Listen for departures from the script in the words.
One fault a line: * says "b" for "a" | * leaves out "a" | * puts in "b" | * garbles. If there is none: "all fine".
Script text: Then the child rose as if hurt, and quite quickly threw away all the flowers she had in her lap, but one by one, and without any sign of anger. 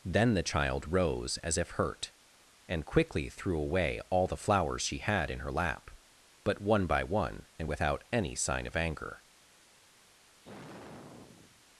* leaves out "quite"